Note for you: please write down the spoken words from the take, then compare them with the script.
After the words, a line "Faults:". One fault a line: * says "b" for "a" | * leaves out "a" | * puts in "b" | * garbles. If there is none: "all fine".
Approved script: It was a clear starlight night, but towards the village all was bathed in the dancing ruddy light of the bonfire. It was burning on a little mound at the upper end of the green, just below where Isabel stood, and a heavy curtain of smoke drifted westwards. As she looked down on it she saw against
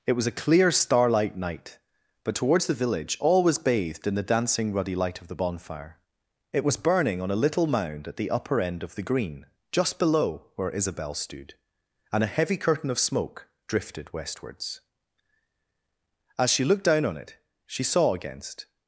It was a clear starlight night, but towards the village all was bathed in the dancing ruddy light of the bonfire. It was burning on a little mound at the upper end of the green, just below where Isabel stood, and a heavy curtain of smoke drifted westwards. As she looked down on it she saw against
Faults:
all fine